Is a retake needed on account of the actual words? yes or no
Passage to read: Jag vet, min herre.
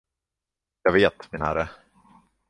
no